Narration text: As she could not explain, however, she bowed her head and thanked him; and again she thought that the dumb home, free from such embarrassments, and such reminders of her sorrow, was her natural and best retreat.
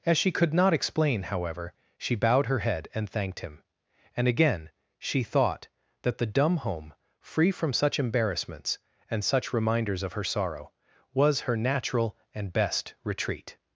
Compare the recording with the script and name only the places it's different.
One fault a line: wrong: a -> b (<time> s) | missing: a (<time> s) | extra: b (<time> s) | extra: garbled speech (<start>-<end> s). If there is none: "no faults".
no faults